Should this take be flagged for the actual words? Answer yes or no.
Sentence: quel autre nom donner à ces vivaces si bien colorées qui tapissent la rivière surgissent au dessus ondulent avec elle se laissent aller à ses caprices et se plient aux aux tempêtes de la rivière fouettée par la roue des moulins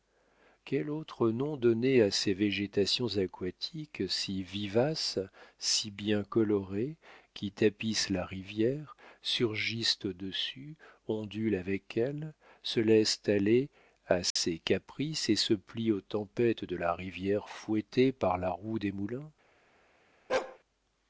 yes